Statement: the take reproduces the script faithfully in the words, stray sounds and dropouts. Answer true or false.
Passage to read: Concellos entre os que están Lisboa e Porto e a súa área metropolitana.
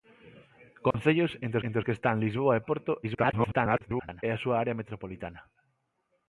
false